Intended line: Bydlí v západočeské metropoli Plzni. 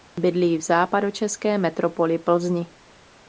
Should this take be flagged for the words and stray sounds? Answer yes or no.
no